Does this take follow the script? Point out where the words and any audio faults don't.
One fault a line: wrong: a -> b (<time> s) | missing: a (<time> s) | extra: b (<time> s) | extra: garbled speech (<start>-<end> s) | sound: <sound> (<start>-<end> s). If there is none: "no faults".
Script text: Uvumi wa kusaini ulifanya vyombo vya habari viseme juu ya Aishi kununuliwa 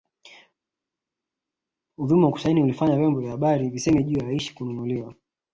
no faults